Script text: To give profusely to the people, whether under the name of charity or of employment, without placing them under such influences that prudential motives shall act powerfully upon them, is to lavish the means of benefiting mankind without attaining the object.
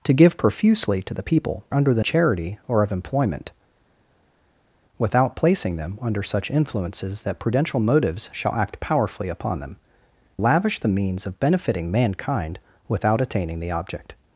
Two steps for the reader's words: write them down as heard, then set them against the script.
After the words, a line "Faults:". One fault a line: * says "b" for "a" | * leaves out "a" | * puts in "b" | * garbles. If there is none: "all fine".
To give profusely to the people, under the charity or of employment, without placing them under such influences that prudential motives shall act powerfully upon them, lavish the means of benefiting mankind without attaining the object.
Faults:
* leaves out "whether"
* leaves out "name of"
* leaves out "is to"